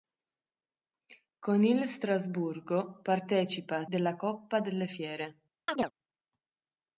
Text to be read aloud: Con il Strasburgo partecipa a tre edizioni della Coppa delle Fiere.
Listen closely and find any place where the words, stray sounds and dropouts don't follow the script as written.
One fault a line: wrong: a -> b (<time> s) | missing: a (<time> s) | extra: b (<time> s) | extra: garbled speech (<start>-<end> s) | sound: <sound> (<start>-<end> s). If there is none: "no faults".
missing: tre edizioni (3.9 s)
sound: chirp (5.7-5.9 s)